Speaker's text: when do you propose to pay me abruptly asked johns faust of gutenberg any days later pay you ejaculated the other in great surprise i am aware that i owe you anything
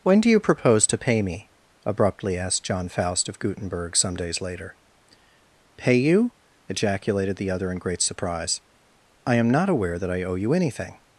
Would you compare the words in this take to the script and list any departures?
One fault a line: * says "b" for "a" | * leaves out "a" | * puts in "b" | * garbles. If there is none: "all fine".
* says "john" for "johns"
* says "some" for "any"
* puts in "not"